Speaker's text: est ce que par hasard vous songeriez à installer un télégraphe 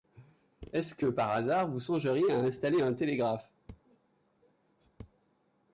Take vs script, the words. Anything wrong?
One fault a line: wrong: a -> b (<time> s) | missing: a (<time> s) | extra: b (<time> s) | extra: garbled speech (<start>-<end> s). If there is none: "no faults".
no faults